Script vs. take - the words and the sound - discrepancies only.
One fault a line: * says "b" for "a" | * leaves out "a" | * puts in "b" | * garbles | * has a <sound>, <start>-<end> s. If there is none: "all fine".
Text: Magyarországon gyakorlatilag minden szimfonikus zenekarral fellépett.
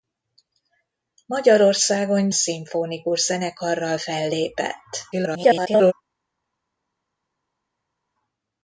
* leaves out "gyakorlatilag minden"
* garbles